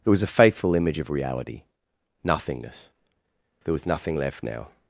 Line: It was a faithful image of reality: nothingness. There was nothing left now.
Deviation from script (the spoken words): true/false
false